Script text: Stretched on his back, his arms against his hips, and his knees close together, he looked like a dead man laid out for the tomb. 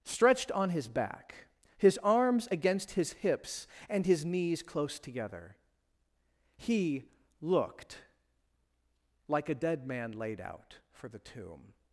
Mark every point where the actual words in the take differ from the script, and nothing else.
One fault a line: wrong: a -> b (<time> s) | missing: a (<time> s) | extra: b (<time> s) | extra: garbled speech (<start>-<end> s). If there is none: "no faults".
no faults